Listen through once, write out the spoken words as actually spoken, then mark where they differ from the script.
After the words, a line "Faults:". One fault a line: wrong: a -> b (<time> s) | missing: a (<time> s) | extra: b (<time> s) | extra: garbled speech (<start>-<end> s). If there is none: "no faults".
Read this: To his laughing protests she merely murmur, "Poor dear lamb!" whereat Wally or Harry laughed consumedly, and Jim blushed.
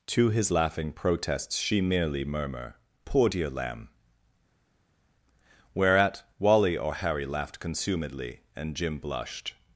To his laughing protests she merely murmur, "Poor dear lamb!" whereat Wally or Harry laughed consumedly, and Jim blushed.
Faults:
no faults